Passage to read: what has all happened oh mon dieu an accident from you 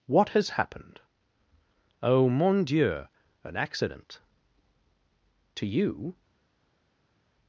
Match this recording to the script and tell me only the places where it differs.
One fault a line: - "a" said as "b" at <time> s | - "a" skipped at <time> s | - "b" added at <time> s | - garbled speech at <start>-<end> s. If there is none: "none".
- "all" skipped at 0.5 s
- "from" said as "to" at 5.5 s